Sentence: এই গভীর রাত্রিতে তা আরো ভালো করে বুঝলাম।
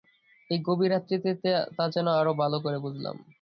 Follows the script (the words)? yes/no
no